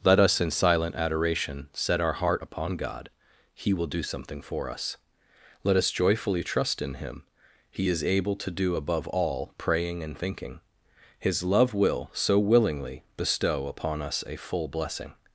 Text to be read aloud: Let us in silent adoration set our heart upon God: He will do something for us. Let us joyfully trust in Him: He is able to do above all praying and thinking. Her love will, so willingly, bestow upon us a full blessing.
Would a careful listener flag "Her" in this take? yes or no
yes